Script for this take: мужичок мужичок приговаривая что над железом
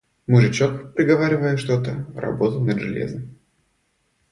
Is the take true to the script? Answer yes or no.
no